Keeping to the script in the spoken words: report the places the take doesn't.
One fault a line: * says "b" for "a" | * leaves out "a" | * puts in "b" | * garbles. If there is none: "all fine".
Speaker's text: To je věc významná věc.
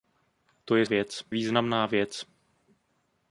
all fine